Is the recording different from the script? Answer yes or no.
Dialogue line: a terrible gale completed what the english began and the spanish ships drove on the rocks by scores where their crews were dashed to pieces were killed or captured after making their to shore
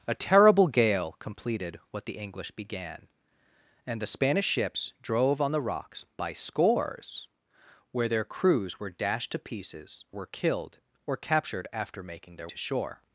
no